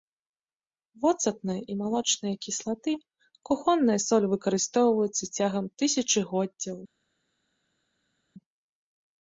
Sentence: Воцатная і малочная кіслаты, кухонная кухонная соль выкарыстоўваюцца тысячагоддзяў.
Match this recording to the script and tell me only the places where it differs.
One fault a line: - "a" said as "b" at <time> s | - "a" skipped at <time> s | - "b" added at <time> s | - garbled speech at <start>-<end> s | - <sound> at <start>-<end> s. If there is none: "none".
- "кухонная" skipped at 4.0 s
- "цягам" added at 5.4 s